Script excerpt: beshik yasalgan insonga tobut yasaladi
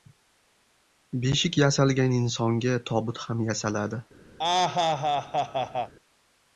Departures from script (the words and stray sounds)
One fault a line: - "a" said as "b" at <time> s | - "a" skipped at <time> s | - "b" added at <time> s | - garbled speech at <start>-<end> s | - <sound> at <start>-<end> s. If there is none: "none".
- "ham" added at 3.3 s
- laugh at 4.4-5.9 s